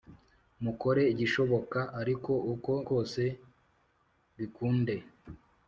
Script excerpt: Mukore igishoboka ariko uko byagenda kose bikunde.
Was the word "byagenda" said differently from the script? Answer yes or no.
yes